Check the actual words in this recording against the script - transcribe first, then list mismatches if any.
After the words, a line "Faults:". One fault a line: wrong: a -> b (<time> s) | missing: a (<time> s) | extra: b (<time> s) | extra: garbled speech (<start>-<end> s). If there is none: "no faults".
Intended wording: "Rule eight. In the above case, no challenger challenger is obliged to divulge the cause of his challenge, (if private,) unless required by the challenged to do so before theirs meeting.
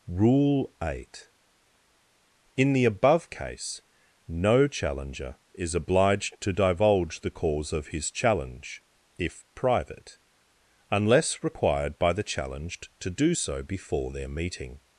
"Rule eight. In the above case, no challenger is obliged to divulge the cause of his challenge, (if private,) unless required by the challenged to do so before their meeting.
Faults:
missing: challenger (5.3 s)
wrong: theirs -> their (14.1 s)